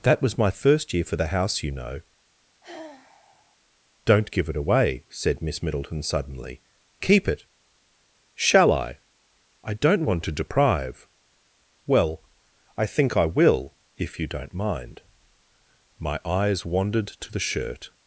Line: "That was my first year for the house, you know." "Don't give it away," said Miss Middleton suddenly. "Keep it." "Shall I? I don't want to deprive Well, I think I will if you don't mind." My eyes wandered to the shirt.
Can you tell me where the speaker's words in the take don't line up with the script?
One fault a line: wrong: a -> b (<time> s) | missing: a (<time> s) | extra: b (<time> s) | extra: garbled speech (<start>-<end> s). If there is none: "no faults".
no faults